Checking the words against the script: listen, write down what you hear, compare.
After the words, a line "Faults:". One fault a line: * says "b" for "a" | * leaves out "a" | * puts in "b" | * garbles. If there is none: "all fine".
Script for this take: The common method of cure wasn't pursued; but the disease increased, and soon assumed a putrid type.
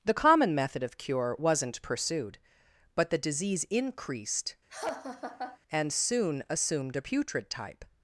The common method of cure wasn't pursued; but the disease increased, and soon assumed a putrid type.
Faults:
all fine